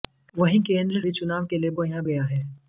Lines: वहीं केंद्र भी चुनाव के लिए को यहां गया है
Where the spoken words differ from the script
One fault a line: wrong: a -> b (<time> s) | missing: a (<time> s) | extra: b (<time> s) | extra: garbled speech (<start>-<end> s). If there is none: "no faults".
no faults